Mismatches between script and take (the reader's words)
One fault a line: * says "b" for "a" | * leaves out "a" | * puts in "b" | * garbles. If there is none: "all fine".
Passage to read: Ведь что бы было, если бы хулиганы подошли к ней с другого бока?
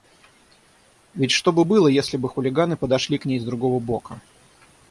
all fine